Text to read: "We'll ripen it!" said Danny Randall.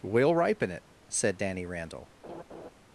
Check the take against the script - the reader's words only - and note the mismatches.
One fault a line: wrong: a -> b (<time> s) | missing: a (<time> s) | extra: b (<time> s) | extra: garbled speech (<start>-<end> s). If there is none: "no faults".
no faults